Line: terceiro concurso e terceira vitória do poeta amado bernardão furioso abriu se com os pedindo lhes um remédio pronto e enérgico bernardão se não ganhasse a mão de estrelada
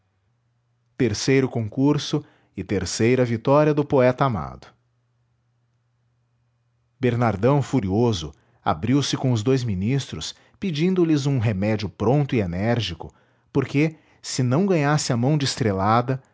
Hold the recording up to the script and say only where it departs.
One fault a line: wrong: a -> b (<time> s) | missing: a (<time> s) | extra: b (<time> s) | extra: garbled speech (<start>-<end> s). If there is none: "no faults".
extra: dous ministros (9.4 s)
wrong: bernardão -> porque (13.5 s)